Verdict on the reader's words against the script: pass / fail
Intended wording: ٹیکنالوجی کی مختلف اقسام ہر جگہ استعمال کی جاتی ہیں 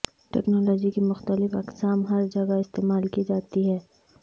pass